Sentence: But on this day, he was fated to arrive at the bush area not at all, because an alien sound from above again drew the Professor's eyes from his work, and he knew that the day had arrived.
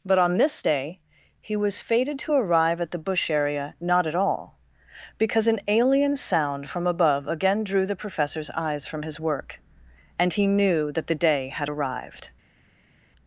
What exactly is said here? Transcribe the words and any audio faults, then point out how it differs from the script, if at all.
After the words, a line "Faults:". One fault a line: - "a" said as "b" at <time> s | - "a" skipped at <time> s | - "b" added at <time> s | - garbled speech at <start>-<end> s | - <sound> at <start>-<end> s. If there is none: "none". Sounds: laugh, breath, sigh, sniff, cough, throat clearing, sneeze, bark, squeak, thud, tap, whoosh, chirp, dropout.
But on this day, he was fated to arrive at the bush area not at all, because an alien sound from above again drew the Professor's eyes from his work, and he knew that the day had arrived.
Faults:
none